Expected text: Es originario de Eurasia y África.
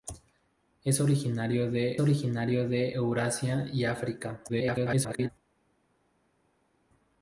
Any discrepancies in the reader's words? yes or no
yes